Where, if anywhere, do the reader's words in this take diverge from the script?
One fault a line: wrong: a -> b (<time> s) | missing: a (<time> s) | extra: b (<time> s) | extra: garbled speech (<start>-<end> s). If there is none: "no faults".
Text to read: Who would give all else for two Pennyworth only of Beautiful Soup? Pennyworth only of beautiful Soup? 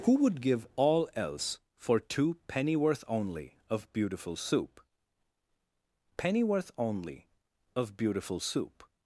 no faults